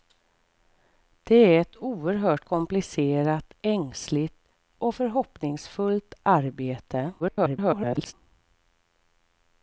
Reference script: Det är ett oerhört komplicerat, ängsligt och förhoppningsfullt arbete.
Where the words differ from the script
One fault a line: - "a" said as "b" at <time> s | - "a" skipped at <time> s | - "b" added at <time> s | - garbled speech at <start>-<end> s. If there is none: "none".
- garbled speech at 7.2-8.1 s